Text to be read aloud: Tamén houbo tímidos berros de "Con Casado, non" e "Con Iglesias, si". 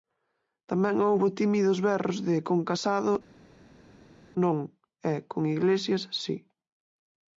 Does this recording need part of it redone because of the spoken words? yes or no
no